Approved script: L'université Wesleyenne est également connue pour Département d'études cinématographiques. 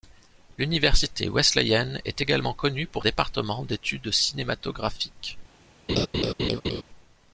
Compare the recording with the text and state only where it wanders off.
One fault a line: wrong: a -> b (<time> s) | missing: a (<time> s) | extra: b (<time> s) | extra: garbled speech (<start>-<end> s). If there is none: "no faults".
no faults